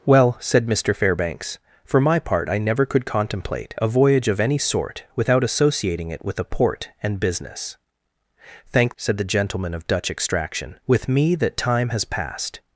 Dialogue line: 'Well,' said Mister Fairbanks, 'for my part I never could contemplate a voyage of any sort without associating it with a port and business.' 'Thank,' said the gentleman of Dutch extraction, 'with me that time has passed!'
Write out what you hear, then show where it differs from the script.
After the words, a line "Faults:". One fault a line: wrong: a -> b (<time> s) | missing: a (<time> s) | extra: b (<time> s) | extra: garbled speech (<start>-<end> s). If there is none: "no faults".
'Well,' said Mister Fairbanks, 'for my part I never could contemplate a voyage of any sort without associating it with a port and business.' 'Thank,' said the gentleman of Dutch extraction, 'with me that time has passed!'
Faults:
no faults